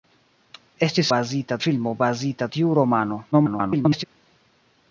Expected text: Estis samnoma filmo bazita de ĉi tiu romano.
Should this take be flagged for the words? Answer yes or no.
yes